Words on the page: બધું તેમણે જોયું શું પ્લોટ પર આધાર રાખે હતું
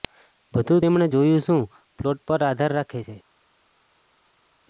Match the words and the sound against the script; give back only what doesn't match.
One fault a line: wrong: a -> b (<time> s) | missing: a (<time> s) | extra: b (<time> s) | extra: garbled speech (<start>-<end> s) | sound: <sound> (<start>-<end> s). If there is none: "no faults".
wrong: હતું -> છે (3.0 s)